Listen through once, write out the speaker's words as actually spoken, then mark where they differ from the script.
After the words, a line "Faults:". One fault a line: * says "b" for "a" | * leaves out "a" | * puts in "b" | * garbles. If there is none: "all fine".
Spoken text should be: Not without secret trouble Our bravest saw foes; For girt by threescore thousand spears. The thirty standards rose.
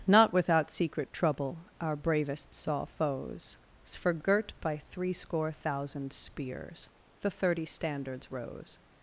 Not without secret trouble Our bravest saw foes; For girt by threescore thousand spears. The thirty standards rose.
Faults:
all fine